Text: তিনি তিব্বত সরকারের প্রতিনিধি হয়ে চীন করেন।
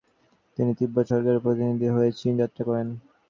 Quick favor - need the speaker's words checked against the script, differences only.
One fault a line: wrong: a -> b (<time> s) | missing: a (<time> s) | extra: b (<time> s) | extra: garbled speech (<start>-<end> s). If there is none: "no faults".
extra: যাত্রা (2.4 s)